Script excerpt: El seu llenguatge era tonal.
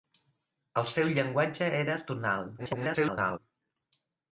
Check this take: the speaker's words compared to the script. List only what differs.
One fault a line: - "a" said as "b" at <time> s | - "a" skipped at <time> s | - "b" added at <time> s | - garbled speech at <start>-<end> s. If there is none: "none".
- garbled speech at 2.6-3.4 s